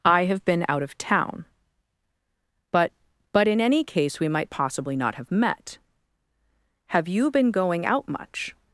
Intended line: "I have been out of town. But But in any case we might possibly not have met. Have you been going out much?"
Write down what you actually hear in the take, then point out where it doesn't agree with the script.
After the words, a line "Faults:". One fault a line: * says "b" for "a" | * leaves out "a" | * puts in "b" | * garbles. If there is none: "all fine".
"I have been out of town. But But in any case we might possibly not have met. Have you been going out much?"
Faults:
all fine